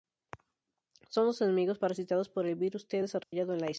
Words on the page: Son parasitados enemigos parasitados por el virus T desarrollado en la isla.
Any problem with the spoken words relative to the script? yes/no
yes